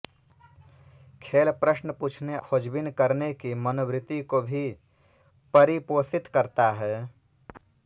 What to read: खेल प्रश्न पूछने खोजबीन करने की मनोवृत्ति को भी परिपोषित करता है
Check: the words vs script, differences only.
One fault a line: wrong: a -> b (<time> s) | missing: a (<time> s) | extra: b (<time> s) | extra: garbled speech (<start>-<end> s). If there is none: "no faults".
no faults